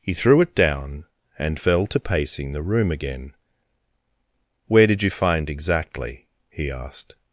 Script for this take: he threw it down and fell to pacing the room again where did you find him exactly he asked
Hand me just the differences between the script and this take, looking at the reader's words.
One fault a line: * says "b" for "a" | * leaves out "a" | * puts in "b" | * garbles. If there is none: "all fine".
* leaves out "him"